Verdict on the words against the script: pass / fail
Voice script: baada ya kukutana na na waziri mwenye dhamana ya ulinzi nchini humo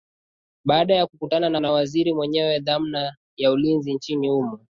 pass